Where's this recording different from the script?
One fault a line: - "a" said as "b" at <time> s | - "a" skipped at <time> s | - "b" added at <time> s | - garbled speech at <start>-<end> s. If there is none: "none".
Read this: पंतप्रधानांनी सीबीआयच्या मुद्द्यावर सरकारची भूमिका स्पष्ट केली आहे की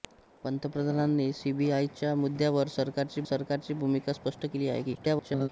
- "सरकारची" added at 3.2 s
- garbled speech at 4.9-5.5 s